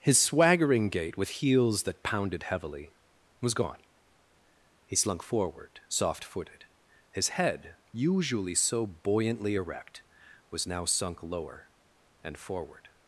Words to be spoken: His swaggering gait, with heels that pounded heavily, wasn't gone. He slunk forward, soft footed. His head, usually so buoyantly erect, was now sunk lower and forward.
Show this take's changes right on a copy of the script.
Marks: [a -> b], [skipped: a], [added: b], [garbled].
His swaggering gait, with heels that pounded heavily, [wasn't -> was] gone. He slunk forward, soft footed. His head, usually so buoyantly erect, was now sunk lower and forward.